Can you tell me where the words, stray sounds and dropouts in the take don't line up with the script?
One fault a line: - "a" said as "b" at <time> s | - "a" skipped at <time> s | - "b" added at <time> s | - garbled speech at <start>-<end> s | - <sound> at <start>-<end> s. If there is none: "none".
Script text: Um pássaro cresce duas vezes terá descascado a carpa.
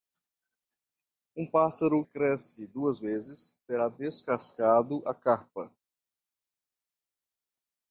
none